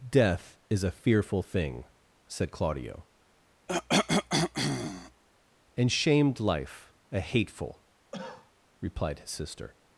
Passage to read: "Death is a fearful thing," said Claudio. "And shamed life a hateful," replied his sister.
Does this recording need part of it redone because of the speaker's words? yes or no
no